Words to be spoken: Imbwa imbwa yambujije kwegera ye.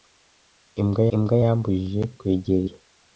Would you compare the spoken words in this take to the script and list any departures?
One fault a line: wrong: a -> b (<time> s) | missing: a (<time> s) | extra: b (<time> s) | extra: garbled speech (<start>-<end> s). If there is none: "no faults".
no faults